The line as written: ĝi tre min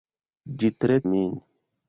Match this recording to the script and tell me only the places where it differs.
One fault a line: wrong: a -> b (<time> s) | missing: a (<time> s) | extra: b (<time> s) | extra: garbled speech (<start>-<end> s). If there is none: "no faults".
no faults